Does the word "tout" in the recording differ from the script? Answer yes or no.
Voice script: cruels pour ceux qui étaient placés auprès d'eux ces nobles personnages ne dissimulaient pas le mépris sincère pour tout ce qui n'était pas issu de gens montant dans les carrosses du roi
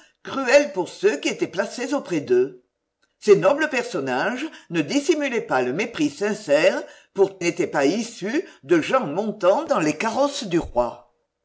yes